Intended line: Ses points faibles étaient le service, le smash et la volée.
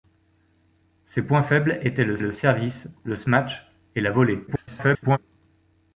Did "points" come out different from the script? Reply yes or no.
no